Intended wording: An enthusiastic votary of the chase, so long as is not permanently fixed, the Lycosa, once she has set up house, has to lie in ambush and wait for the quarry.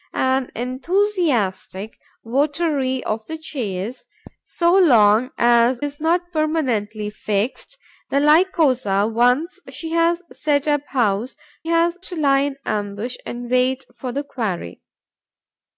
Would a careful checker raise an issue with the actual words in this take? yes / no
no